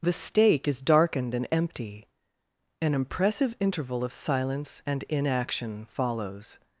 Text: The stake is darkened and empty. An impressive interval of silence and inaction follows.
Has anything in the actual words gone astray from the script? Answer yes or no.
no